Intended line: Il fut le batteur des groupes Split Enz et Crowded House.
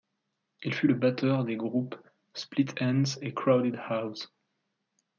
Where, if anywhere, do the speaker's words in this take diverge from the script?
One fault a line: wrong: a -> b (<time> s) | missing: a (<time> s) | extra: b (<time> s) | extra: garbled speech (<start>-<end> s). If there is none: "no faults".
no faults